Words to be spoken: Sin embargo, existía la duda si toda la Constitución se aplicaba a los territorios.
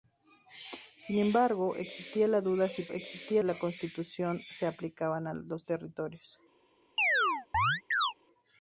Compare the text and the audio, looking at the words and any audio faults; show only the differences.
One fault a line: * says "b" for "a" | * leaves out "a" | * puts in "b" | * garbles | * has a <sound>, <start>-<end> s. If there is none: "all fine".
* says "existía" for "toda"
* has a chirp, 7.0-8.1 s